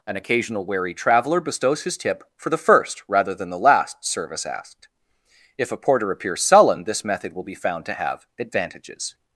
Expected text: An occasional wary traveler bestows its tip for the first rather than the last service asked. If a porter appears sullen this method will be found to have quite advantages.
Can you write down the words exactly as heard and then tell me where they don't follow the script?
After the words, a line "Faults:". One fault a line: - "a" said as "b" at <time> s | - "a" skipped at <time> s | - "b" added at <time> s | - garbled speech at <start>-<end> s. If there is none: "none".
An occasional wary traveler bestows his tip for the first rather than the last service asked. If a porter appears sullen this method will be found to have advantages.
Faults:
- "its" said as "his" at 1.8 s
- "quite" skipped at 8.2 s